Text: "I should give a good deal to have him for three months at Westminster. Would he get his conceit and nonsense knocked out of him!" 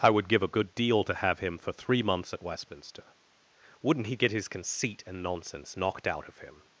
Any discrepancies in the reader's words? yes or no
yes